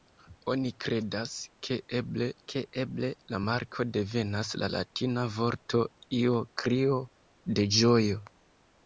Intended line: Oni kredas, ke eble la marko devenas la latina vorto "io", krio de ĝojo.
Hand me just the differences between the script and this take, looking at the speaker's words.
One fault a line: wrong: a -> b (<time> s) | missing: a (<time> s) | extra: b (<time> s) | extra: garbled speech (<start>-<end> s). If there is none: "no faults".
extra: ke eble (2.5 s)